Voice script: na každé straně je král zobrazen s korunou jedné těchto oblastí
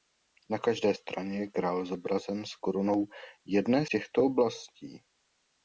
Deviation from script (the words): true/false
false